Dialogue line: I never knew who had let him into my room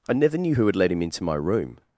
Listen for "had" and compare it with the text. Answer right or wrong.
right